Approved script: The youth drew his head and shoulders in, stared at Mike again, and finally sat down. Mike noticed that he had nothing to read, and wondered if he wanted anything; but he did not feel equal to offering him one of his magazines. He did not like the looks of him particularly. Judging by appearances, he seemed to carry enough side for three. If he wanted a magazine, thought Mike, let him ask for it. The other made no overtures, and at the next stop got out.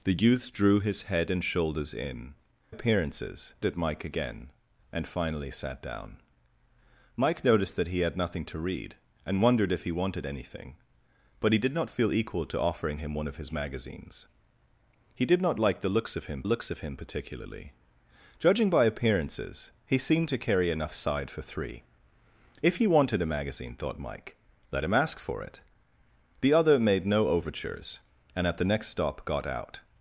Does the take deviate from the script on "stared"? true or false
true